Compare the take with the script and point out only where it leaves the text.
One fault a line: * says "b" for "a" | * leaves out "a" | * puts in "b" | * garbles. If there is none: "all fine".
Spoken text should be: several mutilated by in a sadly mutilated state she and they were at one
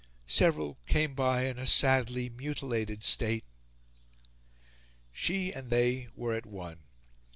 * says "came" for "mutilated"